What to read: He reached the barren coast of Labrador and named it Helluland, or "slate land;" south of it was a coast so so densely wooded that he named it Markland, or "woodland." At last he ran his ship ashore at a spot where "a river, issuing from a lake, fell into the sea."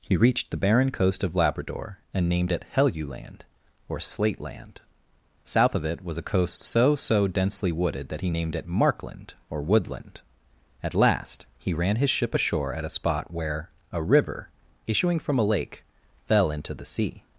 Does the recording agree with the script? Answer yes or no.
yes